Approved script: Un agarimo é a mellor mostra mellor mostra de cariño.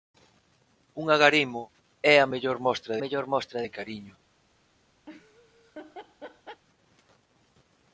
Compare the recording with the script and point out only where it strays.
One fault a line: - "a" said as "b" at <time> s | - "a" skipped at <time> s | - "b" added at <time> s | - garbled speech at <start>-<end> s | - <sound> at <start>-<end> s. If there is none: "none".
- laugh at 5.1-6.6 s